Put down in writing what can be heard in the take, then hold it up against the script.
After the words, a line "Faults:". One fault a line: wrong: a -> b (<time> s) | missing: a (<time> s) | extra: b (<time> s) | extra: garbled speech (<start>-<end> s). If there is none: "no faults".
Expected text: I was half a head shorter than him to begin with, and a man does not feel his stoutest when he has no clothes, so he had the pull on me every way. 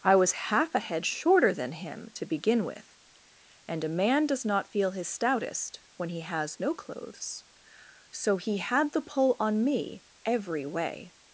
I was half a head shorter than him to begin with, and a man does not feel his stoutest when he has no clothes, so he had the pull on me every way.
Faults:
no faults